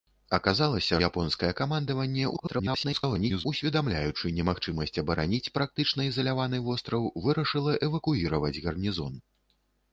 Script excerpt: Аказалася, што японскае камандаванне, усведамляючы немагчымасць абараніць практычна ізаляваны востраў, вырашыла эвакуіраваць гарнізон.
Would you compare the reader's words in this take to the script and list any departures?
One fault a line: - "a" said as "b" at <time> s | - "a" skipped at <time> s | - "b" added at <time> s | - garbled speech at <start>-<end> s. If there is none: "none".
- "што" skipped at 1.0 s
- garbled speech at 2.3-3.5 s